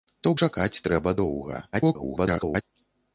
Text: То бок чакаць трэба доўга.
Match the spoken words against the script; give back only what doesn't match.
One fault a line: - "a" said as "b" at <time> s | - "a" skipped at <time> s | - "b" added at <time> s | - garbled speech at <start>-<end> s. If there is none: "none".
- "бок" skipped at 0.3 s
- garbled speech at 1.7-2.6 s